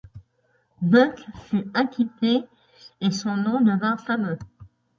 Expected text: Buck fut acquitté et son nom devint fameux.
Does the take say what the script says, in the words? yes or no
yes